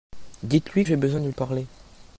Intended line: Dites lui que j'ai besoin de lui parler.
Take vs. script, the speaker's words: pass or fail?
fail